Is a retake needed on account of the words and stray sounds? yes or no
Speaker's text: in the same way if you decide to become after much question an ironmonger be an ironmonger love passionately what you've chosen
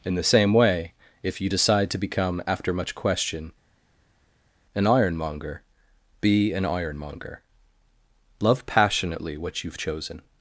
no